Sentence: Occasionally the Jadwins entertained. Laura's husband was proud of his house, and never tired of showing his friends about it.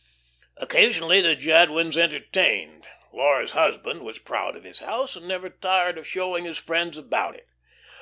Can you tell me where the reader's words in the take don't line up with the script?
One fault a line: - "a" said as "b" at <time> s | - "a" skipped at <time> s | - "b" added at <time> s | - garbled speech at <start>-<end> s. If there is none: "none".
none